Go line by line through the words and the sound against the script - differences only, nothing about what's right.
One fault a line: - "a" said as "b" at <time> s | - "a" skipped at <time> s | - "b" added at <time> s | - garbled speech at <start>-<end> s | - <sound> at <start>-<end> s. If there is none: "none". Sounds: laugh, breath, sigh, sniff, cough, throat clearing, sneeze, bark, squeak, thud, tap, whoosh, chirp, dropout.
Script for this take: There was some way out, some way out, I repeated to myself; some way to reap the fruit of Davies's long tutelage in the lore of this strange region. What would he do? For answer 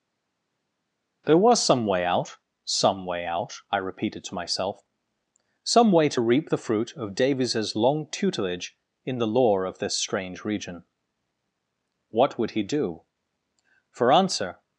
none